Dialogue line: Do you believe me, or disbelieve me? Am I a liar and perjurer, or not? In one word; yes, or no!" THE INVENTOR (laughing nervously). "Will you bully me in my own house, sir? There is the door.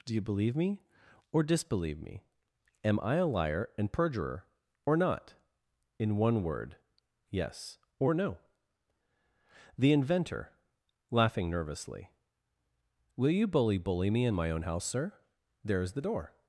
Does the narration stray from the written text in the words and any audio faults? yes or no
yes